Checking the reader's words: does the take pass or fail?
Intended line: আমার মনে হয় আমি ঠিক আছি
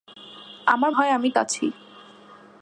fail